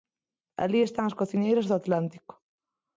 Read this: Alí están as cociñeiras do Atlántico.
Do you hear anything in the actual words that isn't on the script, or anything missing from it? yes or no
no